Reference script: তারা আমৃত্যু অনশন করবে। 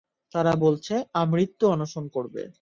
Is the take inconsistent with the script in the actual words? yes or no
yes